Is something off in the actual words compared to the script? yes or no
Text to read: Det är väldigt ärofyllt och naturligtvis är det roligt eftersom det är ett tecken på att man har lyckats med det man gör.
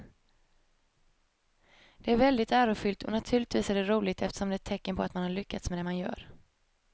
no